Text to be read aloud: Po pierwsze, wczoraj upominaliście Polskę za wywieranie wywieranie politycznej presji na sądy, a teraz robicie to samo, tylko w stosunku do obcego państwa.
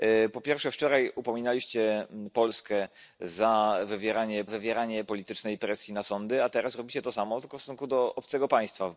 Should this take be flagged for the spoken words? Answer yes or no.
no